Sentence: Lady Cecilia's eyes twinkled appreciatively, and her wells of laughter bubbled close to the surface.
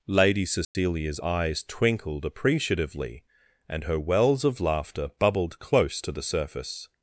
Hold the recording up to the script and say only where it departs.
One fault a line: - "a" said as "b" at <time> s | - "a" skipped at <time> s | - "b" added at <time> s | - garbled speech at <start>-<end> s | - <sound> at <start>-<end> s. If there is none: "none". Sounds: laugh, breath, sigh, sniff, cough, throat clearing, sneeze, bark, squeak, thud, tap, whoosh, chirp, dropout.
- dropout at 0.6-0.7 s